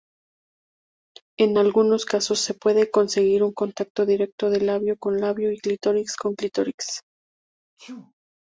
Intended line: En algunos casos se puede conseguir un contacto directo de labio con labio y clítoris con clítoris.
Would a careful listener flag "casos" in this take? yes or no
no